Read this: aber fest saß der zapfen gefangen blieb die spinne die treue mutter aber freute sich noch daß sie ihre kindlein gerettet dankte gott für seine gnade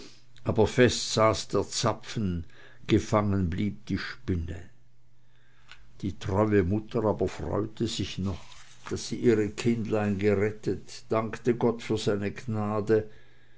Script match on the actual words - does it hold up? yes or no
yes